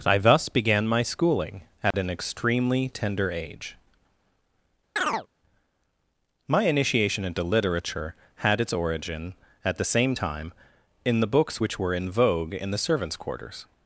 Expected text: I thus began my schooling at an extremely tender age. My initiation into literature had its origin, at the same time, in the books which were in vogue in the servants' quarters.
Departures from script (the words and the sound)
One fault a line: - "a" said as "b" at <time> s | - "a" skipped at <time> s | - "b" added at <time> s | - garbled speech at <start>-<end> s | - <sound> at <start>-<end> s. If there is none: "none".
- dropout at 1.9-1.9 s
- chirp at 5.0-5.3 s